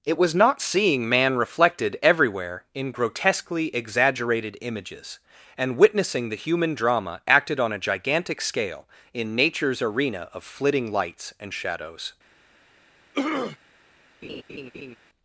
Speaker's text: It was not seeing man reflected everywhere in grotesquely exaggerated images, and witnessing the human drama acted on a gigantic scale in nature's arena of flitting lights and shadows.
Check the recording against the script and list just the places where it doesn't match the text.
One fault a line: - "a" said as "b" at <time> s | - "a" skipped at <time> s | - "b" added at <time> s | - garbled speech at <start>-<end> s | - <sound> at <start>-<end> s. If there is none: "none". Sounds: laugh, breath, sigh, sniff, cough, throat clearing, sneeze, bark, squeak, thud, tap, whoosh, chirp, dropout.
- throat clearing at 13.1-13.6 s
- laugh at 14.2-15.0 s